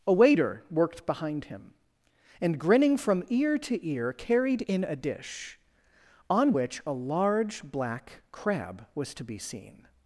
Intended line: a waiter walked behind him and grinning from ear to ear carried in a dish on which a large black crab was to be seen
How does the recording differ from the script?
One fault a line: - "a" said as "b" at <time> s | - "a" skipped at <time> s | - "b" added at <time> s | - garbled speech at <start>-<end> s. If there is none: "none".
- "walked" said as "worked" at 0.7 s